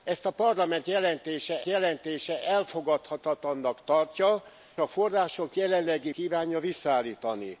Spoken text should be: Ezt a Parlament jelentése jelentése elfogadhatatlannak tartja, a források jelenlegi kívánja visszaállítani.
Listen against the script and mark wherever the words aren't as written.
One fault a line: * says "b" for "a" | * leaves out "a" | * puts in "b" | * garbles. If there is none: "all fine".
all fine